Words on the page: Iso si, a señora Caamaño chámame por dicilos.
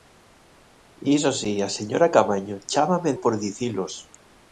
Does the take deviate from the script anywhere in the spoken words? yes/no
no